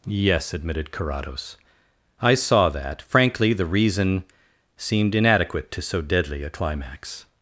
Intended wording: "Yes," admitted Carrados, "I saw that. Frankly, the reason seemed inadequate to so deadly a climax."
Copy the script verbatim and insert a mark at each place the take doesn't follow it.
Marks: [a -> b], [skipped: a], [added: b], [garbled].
"Yes," admitted Carrados, "I saw that. Frankly, the reason seemed inadequate to so deadly a climax."